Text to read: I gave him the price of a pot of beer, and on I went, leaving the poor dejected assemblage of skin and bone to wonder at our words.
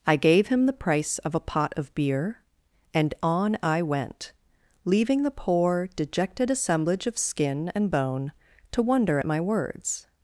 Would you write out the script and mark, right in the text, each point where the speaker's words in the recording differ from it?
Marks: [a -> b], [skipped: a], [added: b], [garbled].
I gave him the price of a pot of beer, and on I went, leaving the poor dejected assemblage of skin and bone to wonder at [our -> my] words.